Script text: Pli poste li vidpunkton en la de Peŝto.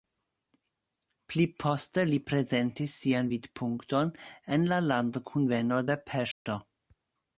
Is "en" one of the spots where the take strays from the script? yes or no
no